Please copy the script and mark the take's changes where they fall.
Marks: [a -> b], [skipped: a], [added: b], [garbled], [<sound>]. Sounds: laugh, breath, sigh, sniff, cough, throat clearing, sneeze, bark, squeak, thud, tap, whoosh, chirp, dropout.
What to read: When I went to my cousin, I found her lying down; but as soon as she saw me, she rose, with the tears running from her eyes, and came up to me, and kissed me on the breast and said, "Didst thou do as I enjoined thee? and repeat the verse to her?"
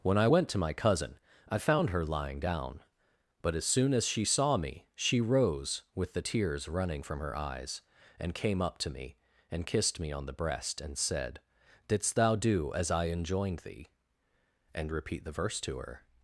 When I went to my cousin, I found her lying down; but as soon as she saw me, she rose, with the tears running from her eyes, and came up to me, and kissed me on the breast and said, "Didst thou do as I enjoined thee? and repeat the verse to her?"